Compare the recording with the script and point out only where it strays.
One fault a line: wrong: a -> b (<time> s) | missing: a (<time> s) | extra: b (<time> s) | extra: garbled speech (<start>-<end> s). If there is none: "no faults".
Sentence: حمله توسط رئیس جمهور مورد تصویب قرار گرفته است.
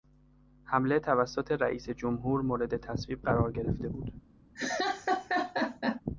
wrong: است -> بود (3.9 s)